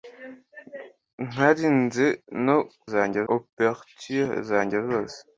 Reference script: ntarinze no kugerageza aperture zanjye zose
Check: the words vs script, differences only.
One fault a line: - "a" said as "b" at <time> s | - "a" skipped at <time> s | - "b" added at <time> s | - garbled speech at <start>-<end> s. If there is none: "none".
- "kugerageza" said as "zanjye" at 2.9 s